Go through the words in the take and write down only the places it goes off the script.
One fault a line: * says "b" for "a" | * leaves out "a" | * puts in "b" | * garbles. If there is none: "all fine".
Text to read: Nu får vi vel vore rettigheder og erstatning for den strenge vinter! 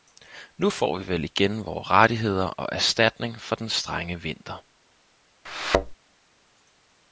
* puts in "igen"